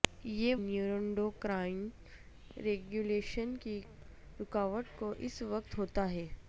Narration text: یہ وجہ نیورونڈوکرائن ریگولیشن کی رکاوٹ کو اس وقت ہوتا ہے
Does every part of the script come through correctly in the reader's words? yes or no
no